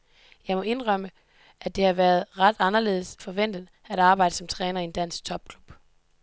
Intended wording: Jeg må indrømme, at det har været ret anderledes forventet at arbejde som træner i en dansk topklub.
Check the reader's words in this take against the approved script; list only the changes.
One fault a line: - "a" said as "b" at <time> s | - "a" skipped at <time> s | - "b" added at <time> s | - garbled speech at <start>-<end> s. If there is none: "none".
none